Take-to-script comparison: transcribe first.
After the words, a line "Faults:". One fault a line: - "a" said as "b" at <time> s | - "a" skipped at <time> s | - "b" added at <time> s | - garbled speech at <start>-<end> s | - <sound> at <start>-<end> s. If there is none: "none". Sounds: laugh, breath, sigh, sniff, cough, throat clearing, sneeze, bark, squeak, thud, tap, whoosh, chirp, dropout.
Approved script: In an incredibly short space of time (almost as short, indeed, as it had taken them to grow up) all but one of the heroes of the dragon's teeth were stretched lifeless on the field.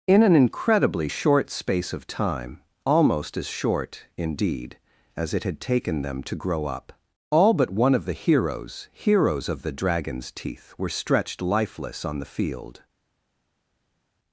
In an incredibly short space of time (almost as short, indeed, as it had taken them to grow up) all but one of the heroes heroes of the dragon's teeth were stretched lifeless on the field.
Faults:
- "heroes" added at 8.9 s